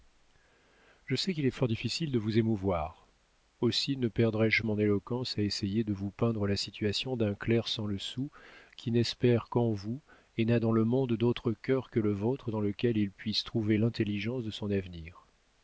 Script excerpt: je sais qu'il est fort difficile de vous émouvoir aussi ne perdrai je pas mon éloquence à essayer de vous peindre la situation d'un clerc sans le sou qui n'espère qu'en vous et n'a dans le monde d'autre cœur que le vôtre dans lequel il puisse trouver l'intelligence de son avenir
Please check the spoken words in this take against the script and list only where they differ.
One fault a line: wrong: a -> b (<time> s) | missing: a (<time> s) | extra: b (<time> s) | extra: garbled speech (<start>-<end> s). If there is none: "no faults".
missing: pas (4.6 s)